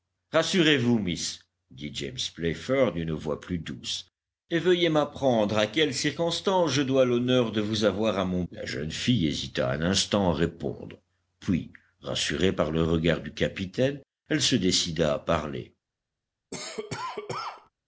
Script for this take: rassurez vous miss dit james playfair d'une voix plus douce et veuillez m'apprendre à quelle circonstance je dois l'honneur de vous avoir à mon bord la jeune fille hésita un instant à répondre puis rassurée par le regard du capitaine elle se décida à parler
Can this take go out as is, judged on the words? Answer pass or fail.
fail